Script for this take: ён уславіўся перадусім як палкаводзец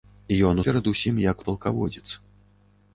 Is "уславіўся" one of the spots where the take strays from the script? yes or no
yes